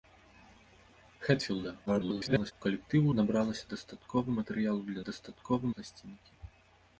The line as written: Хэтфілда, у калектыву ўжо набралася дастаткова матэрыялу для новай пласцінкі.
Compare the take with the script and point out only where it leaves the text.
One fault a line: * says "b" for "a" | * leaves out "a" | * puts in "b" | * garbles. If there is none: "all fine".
* garbles
* leaves out "ўжо"
* says "дастаткова" for "новай"